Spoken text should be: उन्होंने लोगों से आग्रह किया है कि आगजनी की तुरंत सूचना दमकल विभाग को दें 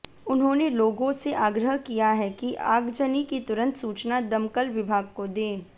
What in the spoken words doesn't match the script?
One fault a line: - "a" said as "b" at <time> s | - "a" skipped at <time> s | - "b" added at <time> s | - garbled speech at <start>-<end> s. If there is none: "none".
none